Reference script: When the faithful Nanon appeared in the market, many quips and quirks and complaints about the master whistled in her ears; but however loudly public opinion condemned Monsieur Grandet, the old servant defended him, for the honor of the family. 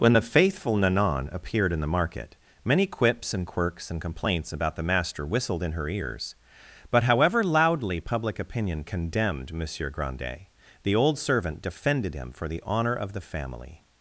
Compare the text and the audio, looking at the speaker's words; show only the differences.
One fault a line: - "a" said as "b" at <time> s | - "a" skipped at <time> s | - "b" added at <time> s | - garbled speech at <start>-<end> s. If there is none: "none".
none